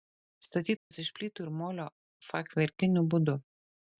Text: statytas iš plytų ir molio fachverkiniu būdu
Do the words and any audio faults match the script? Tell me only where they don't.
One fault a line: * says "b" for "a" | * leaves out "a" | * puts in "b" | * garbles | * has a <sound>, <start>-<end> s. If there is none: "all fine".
* has a dropout, 0.8-0.9 s